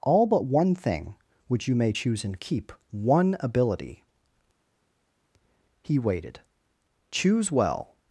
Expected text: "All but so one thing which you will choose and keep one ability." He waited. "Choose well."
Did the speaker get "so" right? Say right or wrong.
wrong